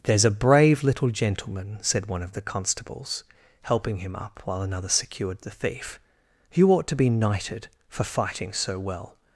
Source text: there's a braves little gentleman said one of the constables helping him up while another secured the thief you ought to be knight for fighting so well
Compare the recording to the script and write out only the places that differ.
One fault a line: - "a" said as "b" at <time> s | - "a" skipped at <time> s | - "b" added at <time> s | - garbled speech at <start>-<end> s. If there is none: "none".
- "braves" said as "brave" at 0.3 s
- "knight" said as "knighted" at 7.1 s